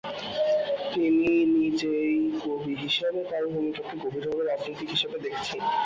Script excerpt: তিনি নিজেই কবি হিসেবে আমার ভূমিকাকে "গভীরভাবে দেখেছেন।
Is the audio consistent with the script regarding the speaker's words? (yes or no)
no